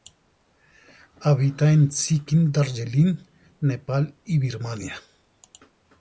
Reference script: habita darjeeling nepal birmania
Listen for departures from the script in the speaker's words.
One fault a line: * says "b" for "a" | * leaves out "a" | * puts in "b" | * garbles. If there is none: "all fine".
* puts in "en sikkim"
* puts in "y"